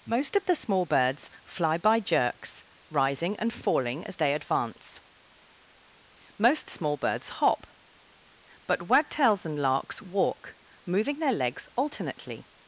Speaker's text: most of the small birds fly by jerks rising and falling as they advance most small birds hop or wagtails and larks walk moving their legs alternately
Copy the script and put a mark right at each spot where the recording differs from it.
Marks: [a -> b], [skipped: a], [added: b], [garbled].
most of the small birds fly by jerks rising and falling as they advance most small birds hop [or -> but] wagtails and larks walk moving their legs alternately